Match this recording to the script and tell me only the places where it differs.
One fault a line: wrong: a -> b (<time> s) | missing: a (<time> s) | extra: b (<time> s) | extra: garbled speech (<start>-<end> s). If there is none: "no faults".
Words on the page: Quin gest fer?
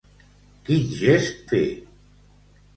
no faults